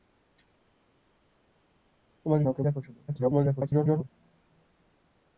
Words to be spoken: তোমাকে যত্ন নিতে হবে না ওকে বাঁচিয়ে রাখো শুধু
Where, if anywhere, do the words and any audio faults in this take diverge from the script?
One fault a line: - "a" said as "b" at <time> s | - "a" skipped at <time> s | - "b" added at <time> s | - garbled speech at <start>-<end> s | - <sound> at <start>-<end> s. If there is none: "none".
- "যত্ন নিতে হবে" skipped at 2.4 s
- "বাঁচিয়ে" skipped at 2.6 s
- garbled speech at 3.1-4.1 s